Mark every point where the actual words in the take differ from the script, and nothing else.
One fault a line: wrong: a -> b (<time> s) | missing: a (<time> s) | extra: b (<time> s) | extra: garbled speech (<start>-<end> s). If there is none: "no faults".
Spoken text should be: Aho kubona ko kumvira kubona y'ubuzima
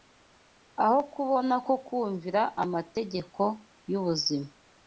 wrong: kubona -> amategeko (2.6 s)